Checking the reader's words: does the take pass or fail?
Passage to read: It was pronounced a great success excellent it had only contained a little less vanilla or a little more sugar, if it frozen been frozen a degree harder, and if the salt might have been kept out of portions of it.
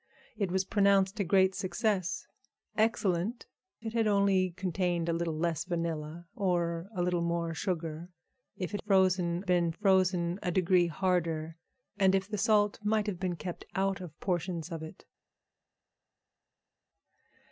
pass